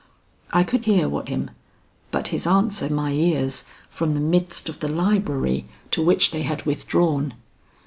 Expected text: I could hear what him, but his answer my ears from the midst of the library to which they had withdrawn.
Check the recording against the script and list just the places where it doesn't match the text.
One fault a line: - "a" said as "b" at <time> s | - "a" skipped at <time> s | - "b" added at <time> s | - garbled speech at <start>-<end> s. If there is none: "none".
none